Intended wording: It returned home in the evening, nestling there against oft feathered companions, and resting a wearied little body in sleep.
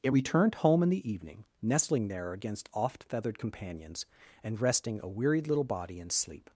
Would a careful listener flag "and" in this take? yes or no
no